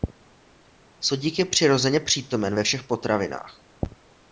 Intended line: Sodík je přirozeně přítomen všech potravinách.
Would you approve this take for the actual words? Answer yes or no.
no